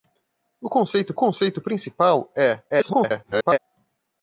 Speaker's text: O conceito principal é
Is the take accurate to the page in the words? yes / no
no